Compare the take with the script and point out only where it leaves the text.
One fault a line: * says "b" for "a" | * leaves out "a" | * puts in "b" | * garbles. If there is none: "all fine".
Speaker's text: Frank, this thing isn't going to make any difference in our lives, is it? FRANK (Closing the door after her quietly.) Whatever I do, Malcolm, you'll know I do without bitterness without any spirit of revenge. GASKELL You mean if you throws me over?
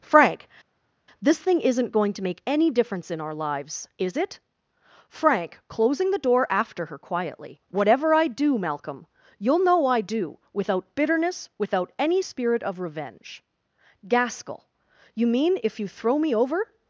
* says "throw" for "throws"